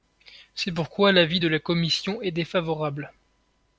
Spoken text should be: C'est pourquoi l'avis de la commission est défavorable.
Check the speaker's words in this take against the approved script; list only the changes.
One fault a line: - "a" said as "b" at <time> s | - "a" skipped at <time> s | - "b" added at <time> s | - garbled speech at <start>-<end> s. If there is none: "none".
none